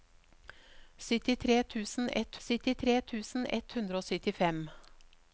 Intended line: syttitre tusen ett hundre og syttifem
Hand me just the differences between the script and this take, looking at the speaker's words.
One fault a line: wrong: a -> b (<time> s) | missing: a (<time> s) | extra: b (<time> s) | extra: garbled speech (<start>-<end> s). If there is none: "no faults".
extra: syttitre tusen ett (2.5 s)